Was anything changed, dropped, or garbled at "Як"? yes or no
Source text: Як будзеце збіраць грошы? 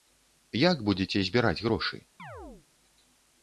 no